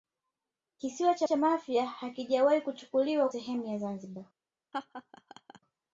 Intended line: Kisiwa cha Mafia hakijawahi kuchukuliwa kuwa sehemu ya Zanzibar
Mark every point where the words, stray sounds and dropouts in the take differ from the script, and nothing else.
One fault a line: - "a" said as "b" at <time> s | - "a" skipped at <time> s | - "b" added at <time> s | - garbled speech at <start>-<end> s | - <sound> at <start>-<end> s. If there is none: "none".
- "cha" added at 1.2 s
- "kuwa" skipped at 3.3 s
- laugh at 4.7-5.6 s